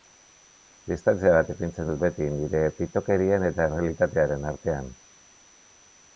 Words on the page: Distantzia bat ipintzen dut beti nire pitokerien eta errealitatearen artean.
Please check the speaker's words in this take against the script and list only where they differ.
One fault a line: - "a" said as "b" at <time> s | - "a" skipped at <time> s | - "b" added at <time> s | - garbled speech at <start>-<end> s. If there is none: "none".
none